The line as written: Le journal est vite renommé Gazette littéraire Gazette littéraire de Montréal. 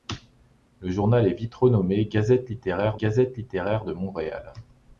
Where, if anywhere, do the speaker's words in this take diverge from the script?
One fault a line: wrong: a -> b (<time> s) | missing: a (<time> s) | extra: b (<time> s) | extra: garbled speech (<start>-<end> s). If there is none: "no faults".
no faults